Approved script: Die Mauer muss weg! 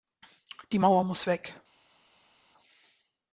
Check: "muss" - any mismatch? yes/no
no